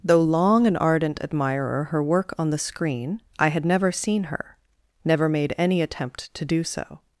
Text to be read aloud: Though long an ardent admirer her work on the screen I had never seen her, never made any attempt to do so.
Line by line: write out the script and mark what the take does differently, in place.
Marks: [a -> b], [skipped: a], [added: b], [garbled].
Though long an ardent admirer her work on the screen I had never seen her, never made any attempt to do so.